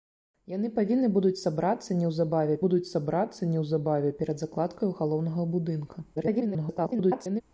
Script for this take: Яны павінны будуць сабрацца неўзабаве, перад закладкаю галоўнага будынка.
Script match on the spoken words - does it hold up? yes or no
no